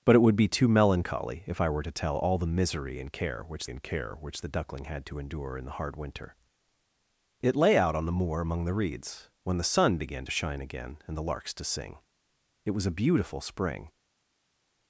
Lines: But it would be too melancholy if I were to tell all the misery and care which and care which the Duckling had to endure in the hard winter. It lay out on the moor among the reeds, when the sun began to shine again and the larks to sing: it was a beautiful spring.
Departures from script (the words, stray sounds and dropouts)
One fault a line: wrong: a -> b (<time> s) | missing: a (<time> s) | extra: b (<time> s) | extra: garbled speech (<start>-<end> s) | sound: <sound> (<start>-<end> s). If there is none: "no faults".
no faults